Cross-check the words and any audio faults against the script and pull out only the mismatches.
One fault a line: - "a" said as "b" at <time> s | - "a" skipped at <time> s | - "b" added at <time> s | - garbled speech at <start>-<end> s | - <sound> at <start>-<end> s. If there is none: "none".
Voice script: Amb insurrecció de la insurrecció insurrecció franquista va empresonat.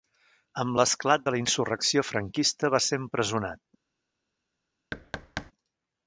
- "insurrecció" said as "l'esclat" at 0.8 s
- "insurrecció" skipped at 2.1 s
- "ser" added at 2.9 s
- thud at 4.9-5.5 s